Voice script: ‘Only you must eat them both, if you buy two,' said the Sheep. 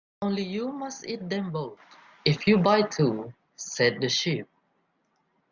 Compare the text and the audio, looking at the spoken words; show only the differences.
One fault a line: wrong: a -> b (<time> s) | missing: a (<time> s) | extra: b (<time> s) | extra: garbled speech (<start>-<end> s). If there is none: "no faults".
no faults